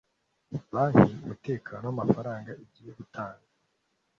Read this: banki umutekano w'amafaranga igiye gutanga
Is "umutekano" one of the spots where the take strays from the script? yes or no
no